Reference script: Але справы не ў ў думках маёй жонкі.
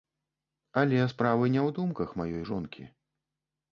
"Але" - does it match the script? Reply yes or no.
yes